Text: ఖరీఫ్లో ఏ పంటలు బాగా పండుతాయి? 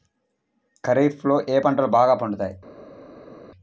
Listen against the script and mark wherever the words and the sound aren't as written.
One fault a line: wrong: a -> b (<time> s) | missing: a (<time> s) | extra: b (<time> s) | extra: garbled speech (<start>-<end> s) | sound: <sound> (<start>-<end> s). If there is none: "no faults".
no faults